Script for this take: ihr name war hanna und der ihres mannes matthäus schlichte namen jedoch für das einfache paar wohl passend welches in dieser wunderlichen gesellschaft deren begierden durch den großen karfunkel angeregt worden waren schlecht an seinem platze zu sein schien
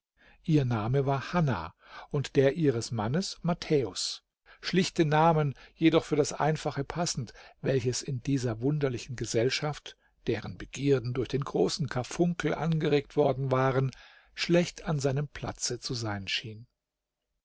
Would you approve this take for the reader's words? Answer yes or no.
no